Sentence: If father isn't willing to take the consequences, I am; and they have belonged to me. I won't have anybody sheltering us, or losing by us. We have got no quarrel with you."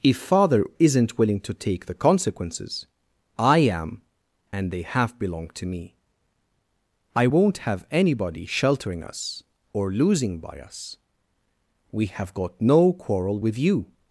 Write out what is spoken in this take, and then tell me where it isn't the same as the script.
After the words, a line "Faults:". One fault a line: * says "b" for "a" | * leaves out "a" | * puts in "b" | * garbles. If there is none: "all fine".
If father isn't willing to take the consequences, I am; and they have belonged to me. I won't have anybody sheltering us, or losing by us. We have got no quarrel with you."
Faults:
all fine